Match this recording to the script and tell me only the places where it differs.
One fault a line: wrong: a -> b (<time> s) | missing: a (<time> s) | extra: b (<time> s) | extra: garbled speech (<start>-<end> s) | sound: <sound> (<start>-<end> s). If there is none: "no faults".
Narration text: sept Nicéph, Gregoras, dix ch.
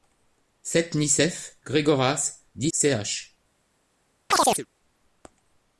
sound: chirp (4.3-4.7 s)